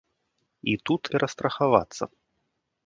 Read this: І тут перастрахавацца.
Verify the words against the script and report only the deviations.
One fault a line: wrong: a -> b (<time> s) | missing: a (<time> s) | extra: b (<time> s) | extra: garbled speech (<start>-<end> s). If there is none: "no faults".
no faults